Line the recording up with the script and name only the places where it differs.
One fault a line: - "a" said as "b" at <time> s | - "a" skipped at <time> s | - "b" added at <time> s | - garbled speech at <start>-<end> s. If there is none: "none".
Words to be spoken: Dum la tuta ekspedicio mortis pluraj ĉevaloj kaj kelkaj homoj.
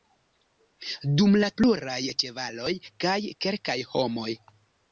- "tuta ekspedicio mortis" skipped at 1.5 s